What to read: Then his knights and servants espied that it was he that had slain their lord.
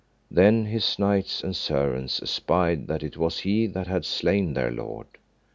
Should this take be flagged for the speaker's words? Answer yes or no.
no